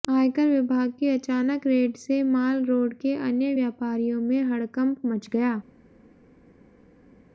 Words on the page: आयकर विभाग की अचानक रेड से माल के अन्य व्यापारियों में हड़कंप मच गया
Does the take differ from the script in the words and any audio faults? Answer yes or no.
yes